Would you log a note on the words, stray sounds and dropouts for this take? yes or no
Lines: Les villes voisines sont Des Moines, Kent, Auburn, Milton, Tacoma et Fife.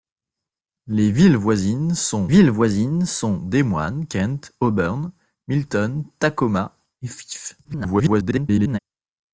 yes